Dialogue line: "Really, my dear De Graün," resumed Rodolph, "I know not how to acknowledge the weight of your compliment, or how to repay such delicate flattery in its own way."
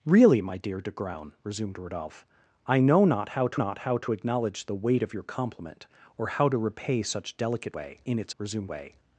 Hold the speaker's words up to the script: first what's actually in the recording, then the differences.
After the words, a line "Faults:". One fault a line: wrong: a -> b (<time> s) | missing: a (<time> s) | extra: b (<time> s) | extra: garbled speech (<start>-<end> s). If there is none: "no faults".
"Really, my dear De Graün," resumed Rodolph, "I know not how to not how to acknowledge the weight of your compliment, or how to repay such delicate way in its resumed way."
Faults:
extra: not how to (3.5 s)
wrong: flattery -> way (7.7 s)
wrong: own -> resumed (8.4 s)